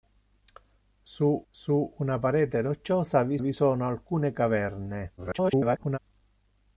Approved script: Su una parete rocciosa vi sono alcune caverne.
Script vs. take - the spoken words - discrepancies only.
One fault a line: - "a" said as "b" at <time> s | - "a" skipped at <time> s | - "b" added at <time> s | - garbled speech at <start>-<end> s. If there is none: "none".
- "su" added at 1.5 s
- "vi" added at 3.4 s
- garbled speech at 5.2-6.0 s